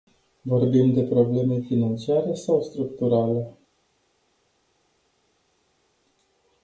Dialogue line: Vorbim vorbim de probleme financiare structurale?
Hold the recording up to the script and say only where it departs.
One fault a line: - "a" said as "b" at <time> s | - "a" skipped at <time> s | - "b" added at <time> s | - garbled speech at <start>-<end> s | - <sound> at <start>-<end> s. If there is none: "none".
- "vorbim" skipped at 0.9 s
- "sau" added at 2.4 s